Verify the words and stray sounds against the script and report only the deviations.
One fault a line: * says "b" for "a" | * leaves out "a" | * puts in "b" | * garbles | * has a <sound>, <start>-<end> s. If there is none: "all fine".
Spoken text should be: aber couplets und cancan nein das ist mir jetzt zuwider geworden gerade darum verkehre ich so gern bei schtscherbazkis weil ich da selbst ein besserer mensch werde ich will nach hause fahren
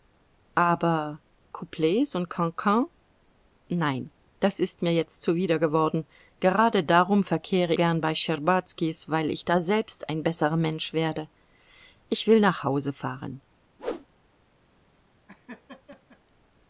* leaves out "ich so"
* has a whoosh, 13.8-14.1 s
* has a laugh, 15.3-16.2 s